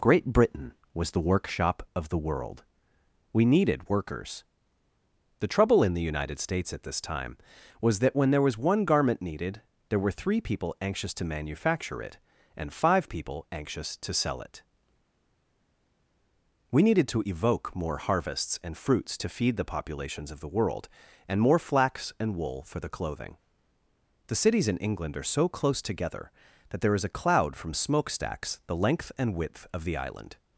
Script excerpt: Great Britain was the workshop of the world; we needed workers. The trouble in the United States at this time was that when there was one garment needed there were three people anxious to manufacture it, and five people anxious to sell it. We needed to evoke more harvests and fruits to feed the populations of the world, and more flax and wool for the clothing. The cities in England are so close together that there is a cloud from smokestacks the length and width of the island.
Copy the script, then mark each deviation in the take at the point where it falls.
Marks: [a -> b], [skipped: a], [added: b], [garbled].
Great Britain was the workshop of the world; we needed workers. The trouble in the United States at this time was that when there was one garment needed there were three people anxious to manufacture it, and five people anxious to sell it. We needed to evoke more harvests and fruits to feed the populations of the world, and more flax and wool for the clothing. The cities in England are so close together that there is a cloud from smokestacks the length and width of the island.